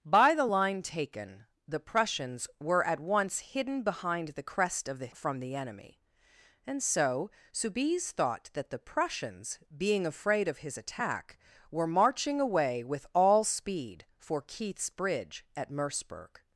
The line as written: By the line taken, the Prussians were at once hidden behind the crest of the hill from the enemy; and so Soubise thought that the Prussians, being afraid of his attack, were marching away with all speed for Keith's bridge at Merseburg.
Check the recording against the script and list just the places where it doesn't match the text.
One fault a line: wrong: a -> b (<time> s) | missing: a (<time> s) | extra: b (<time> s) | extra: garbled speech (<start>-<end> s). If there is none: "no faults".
missing: hill (5.1 s)